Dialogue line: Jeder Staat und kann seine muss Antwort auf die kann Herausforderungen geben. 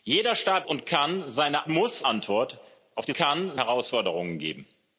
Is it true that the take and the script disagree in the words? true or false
false